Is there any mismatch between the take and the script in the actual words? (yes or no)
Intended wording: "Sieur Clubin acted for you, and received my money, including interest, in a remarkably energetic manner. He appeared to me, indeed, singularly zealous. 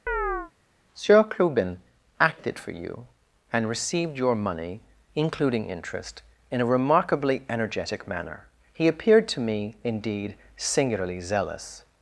yes